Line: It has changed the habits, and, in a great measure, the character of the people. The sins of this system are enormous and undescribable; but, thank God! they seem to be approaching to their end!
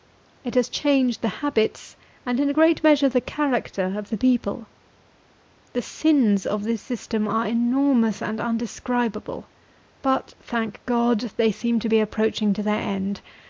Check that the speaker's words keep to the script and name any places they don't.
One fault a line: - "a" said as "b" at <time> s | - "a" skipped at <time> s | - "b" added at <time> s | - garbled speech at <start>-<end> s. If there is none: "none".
none